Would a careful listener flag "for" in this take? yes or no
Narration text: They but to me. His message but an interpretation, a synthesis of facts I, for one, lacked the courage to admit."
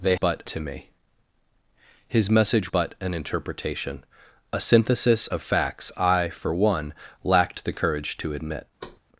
no